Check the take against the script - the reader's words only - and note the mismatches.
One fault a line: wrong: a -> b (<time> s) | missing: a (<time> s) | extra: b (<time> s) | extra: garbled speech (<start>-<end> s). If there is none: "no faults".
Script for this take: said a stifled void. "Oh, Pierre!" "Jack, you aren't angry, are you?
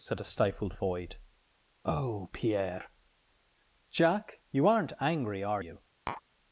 no faults